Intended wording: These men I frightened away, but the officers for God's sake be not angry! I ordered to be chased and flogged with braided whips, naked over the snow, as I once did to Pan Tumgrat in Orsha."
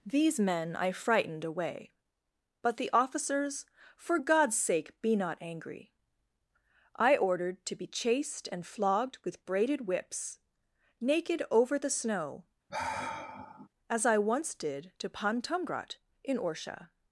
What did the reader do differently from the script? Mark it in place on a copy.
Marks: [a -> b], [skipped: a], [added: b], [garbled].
These men I frightened away, but the officers for God's sake be not angry! I ordered to be chased and flogged with braided whips, naked over the snow, as I once did to Pan Tumgrat in Orsha."